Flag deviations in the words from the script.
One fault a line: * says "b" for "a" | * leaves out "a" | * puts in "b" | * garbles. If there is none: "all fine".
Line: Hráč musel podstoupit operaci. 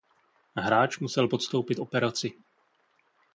all fine